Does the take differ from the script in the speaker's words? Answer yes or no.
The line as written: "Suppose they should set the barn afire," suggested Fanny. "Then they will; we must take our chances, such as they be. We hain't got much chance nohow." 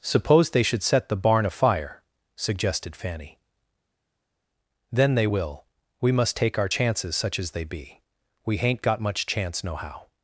no